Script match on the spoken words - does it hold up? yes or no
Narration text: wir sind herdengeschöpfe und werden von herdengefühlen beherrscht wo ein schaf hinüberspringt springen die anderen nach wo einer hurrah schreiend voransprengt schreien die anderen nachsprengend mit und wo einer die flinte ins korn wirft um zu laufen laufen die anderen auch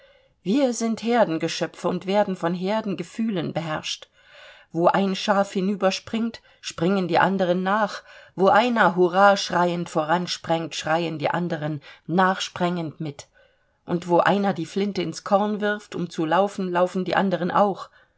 yes